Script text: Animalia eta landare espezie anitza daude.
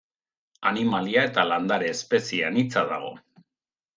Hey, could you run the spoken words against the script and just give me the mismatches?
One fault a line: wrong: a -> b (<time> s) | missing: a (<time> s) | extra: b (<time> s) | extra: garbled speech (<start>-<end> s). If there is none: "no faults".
wrong: daude -> dago (3.0 s)